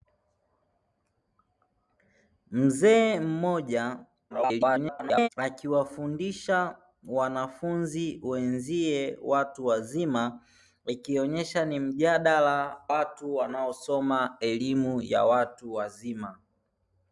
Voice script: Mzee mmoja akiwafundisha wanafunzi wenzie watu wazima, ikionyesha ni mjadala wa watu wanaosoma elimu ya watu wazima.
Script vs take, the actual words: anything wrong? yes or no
yes